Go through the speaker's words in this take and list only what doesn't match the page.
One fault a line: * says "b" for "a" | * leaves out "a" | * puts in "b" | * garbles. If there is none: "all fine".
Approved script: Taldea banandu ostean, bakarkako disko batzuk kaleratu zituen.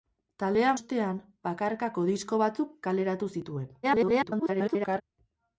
* leaves out "banandu"
* garbles